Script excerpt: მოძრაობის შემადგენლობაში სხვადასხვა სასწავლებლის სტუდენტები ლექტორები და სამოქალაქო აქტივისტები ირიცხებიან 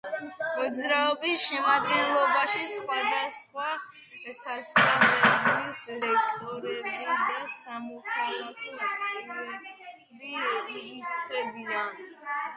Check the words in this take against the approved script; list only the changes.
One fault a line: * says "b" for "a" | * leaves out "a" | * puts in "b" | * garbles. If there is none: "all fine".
* leaves out "სტუდენტები"